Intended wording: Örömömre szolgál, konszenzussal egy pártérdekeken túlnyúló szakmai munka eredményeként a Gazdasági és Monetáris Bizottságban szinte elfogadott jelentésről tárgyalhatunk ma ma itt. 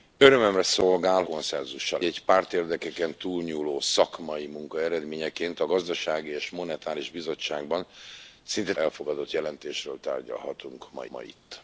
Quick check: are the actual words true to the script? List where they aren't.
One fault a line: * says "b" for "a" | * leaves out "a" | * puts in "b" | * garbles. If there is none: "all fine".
all fine